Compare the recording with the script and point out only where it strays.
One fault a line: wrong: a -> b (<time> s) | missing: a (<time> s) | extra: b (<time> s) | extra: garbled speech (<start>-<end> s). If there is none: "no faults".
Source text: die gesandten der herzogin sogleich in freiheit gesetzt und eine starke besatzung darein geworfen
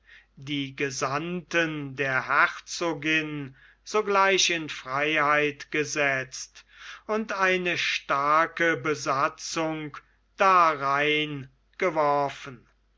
no faults